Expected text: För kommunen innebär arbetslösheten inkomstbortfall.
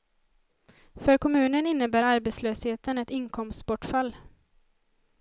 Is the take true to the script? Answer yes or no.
no